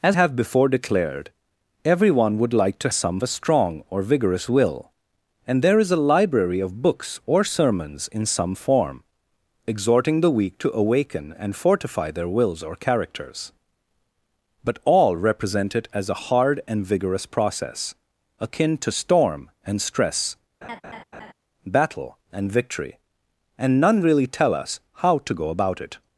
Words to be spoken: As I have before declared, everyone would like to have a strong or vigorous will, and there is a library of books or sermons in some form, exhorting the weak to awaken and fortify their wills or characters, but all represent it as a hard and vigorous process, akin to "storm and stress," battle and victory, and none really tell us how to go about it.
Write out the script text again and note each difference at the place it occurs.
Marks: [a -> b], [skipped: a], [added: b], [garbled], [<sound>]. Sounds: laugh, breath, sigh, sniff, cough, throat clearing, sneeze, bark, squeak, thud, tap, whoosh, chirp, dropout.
As [skipped: I] have before declared, everyone would like to [have -> some] a strong or vigorous will, and there is a library of books or sermons in some form, exhorting the weak to awaken and fortify their wills or characters, but all represent it as a hard and vigorous process, akin to "storm and stress," [laugh] battle and victory, and none really tell us how to go about it.